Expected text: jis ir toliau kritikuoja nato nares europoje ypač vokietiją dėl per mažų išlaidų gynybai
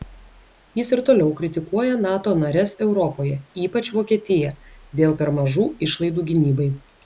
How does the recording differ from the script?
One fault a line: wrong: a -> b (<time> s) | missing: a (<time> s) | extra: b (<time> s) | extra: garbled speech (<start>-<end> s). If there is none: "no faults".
no faults